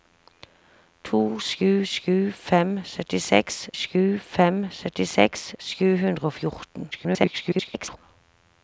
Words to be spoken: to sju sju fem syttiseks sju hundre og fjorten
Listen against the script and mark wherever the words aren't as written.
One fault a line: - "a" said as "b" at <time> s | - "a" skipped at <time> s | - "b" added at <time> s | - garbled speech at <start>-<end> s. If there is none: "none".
- "fem syttiseks sju" added at 4.3 s
- garbled speech at 6.9-8.0 s